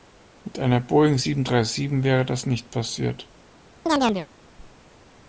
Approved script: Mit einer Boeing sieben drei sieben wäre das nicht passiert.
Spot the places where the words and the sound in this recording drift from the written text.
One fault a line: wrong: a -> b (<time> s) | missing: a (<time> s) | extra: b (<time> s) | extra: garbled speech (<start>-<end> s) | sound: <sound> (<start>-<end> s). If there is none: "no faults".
sound: chirp (3.9-4.3 s)